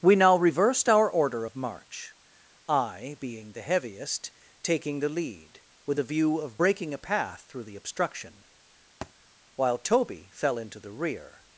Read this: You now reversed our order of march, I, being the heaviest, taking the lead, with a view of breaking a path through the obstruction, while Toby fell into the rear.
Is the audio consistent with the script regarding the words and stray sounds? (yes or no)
no